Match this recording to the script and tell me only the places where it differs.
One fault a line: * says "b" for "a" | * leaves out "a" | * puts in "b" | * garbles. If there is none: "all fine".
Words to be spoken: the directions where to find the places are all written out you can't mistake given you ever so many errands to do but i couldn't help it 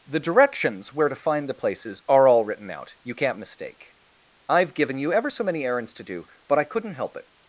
* puts in "i've"